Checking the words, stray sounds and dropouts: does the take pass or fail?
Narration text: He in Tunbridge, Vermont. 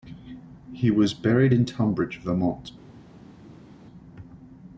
fail